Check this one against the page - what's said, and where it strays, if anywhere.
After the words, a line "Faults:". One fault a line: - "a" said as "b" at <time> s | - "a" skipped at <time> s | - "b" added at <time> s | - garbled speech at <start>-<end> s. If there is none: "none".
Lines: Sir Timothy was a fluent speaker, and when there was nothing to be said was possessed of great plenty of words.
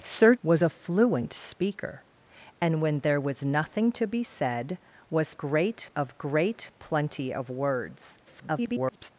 Sir Was a fluent speaker, and when there was nothing to be said was great of great plenty of words. [garbled]
Faults:
- "Timothy" skipped at 0.3 s
- "possessed" said as "great" at 5.4 s
- garbled speech at 8.3-9.1 s